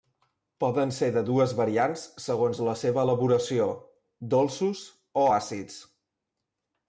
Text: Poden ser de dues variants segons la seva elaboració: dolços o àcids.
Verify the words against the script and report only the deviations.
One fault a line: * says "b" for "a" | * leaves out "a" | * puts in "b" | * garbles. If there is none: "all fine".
all fine